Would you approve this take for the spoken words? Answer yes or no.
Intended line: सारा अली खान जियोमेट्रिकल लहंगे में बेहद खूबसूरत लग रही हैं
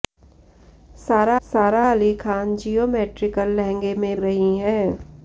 no